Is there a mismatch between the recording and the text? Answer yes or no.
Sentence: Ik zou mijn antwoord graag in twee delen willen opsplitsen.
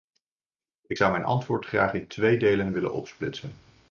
no